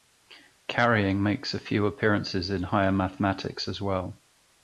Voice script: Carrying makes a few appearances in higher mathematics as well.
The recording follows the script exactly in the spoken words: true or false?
true